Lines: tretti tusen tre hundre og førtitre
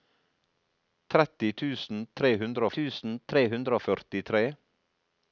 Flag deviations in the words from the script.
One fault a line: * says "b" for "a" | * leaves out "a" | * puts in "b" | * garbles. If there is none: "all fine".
* puts in "tusen tre hundre"